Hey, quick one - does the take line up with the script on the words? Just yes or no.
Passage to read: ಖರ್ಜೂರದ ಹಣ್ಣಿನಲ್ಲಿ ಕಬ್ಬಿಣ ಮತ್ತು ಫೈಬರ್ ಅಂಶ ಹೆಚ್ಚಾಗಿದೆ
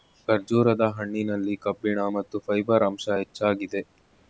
yes